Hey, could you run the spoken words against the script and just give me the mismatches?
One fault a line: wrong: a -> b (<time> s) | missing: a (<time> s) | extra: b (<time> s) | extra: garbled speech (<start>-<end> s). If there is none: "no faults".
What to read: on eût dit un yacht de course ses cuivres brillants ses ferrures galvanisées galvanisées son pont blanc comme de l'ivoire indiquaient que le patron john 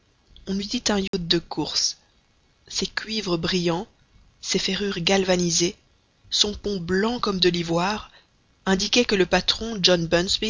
missing: galvanisées (5.8 s)